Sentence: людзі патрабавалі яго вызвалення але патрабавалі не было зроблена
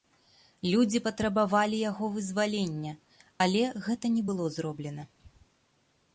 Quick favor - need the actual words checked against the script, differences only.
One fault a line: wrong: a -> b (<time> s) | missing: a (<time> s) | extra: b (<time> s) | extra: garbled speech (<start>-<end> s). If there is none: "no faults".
wrong: патрабавалі -> гэта (3.9 s)